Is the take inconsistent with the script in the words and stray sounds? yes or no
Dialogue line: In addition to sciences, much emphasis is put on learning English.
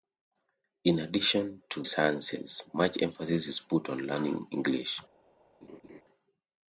yes